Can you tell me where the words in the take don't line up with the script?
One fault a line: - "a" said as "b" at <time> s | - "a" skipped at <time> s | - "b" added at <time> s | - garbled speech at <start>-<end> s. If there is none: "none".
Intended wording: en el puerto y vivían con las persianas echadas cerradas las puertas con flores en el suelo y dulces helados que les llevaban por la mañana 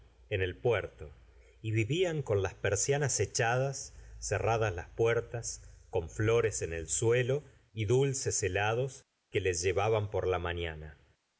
none